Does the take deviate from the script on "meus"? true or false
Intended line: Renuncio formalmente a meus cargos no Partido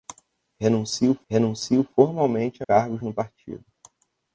true